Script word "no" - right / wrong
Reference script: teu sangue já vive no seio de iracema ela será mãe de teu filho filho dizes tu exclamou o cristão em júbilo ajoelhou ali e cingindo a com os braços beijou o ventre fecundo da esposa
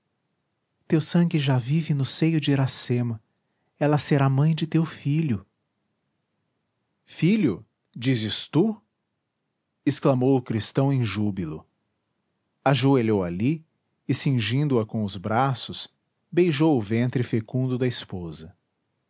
right